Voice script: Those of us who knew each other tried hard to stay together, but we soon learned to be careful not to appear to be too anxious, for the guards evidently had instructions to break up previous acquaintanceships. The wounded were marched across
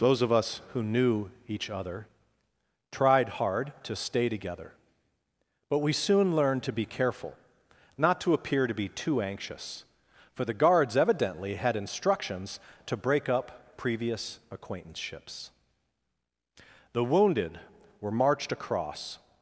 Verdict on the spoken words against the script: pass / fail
pass